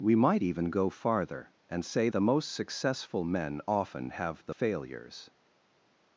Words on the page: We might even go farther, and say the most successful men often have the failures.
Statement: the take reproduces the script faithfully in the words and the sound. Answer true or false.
true